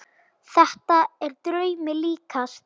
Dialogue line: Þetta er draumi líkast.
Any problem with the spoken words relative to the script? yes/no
no